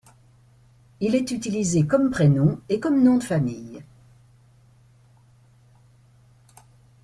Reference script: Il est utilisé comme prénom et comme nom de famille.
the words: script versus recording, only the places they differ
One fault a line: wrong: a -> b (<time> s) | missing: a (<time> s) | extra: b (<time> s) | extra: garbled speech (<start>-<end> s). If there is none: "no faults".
no faults